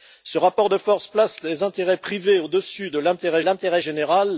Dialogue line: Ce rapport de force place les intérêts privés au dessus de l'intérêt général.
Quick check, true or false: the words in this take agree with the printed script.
false